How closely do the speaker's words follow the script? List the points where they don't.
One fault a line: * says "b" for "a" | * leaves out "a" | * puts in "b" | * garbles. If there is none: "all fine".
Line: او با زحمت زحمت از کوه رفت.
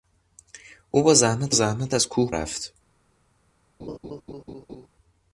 all fine